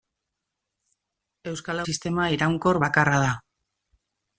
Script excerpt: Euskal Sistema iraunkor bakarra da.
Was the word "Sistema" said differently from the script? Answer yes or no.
no